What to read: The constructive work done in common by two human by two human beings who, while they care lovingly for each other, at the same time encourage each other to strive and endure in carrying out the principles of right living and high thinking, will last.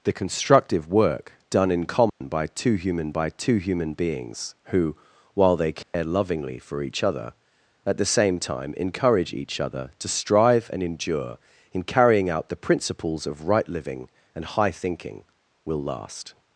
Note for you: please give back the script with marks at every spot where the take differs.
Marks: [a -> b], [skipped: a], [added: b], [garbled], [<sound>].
The constructive work done in common [dropout] by two human by two human beings who, while they care [dropout] lovingly for each other, at the same time encourage each other to strive and endure in carrying out the principles of right living and high thinking, will last.